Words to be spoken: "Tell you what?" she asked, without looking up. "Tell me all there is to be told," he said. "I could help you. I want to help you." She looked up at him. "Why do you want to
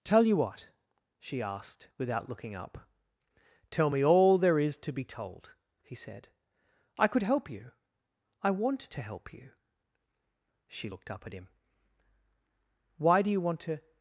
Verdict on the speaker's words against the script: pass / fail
pass